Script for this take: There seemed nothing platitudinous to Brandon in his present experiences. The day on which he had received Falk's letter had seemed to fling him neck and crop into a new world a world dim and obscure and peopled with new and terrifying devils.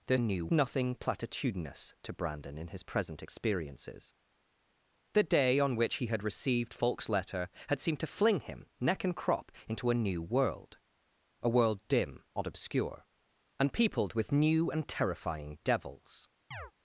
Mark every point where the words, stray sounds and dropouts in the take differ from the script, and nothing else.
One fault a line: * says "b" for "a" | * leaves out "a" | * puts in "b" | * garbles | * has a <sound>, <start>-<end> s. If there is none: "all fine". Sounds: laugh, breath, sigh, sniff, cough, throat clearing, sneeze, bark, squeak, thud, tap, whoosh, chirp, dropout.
* says "new" for "seemed"
* has a chirp, 16.5-16.7 s